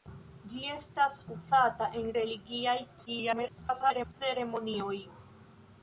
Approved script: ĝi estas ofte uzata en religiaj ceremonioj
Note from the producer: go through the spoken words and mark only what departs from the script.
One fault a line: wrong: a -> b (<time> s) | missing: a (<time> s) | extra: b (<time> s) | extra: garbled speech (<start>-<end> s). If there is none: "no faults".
missing: ofte (1.2 s)
extra: garbled speech (3.1-4.1 s)